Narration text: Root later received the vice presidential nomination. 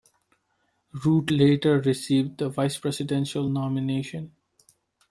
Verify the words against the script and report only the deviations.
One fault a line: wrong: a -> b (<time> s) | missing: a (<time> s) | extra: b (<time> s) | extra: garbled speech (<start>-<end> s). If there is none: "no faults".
no faults